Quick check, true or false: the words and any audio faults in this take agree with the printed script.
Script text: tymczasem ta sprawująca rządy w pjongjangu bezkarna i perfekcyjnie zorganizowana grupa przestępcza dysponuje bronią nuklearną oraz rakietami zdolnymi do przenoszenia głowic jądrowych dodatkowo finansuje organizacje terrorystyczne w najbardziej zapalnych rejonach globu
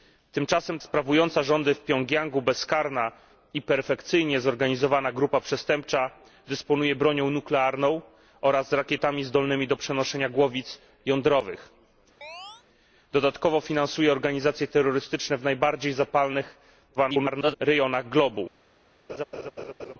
false